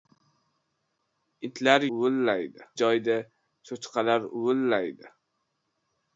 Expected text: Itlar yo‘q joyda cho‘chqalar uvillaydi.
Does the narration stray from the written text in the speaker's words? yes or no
yes